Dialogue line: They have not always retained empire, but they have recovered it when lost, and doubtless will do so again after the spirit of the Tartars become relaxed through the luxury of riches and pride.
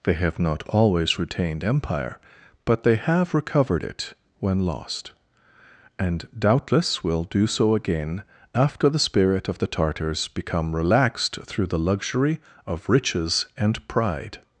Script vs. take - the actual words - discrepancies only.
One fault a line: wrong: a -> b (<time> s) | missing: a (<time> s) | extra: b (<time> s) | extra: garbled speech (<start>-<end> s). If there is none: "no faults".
no faults